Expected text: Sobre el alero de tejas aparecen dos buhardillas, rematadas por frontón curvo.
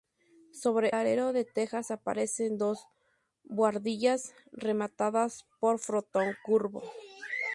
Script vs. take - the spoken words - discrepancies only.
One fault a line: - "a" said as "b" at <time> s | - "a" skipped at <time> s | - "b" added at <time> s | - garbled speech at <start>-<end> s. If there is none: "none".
- "el" skipped at 0.9 s